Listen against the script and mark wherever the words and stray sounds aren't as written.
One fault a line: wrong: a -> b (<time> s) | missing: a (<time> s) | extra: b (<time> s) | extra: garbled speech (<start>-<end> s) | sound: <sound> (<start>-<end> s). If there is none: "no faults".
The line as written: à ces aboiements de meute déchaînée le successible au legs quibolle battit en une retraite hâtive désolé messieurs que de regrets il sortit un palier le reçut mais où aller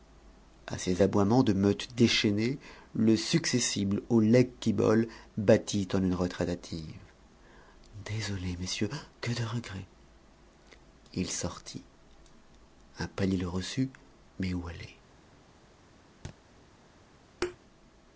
sound: thud (16.2-16.4 s)
sound: thud (17.4-17.6 s)